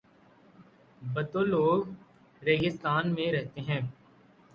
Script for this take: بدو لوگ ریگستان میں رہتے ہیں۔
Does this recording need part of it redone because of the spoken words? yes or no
no